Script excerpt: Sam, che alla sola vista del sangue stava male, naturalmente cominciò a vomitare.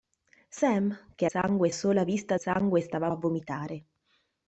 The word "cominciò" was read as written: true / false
false